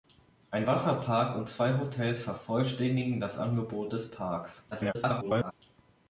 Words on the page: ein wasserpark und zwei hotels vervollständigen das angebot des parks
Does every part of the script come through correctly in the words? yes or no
no